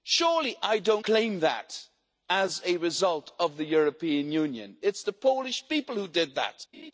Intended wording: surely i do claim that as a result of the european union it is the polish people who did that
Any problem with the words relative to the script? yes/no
no